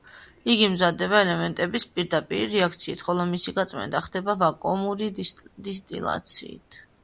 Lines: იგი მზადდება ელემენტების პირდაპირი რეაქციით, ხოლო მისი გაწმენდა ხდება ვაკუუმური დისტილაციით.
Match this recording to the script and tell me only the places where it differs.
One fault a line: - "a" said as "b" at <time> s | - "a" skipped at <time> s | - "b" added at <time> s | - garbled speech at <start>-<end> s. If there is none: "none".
none